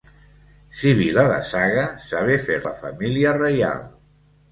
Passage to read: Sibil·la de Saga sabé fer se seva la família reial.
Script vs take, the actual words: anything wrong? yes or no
yes